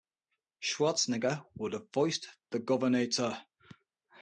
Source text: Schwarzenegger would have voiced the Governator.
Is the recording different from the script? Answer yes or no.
no